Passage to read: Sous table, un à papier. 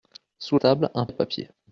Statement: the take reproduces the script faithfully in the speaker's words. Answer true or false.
true